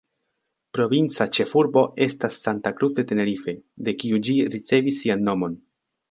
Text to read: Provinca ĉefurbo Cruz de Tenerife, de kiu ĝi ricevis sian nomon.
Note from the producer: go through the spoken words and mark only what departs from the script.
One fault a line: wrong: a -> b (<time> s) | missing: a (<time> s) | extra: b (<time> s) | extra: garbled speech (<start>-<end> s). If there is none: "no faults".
extra: estas Santa (2.0 s)